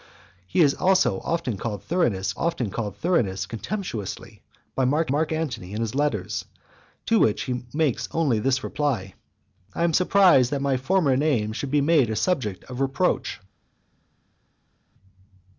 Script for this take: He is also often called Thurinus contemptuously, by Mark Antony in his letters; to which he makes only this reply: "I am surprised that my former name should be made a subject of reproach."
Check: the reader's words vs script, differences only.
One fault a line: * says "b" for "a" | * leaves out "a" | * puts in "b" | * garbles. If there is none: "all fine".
* puts in "often called Thurinus"
* puts in "Mark"